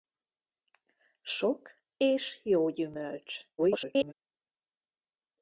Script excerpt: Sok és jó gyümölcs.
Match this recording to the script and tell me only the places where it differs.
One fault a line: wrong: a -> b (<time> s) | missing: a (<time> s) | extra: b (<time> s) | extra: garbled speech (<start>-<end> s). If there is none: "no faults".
extra: garbled speech (3.6-4.1 s)